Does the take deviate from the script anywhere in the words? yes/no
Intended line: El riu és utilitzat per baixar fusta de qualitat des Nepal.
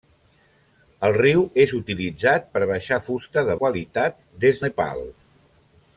no